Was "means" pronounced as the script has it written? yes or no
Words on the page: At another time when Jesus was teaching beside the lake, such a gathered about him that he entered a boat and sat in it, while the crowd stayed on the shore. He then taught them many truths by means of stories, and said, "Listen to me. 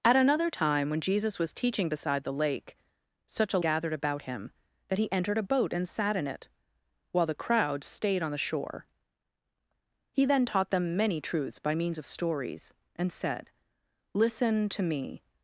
yes